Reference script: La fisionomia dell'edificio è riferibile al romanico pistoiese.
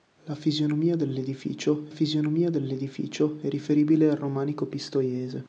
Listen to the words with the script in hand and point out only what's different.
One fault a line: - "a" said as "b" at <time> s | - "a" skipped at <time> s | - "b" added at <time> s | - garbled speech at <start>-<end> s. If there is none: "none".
- "fisionomia dell'edificio" added at 1.9 s